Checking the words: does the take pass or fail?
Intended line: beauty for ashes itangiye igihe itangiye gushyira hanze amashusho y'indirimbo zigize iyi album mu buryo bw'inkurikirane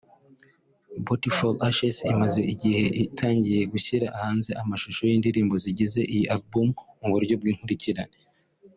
fail